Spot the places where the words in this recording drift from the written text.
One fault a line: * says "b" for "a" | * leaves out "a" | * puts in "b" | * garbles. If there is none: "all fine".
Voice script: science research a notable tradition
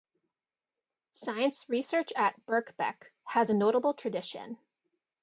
* puts in "at birkbeck has"